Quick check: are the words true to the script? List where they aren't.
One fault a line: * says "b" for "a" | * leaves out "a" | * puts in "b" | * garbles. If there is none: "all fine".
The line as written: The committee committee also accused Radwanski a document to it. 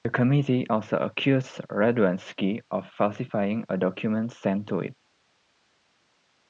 * leaves out "committee"
* puts in "of falsifying"
* puts in "sent"